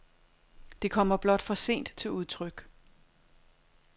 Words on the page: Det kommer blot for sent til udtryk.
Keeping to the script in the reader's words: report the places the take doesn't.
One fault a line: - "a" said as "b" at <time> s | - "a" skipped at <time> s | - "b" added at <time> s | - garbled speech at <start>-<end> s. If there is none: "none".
none